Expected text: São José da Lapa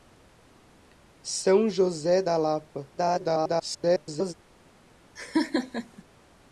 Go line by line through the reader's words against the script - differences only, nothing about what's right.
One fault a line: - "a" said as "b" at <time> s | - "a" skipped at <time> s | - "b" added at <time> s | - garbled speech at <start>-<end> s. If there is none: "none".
- garbled speech at 3.0-4.3 s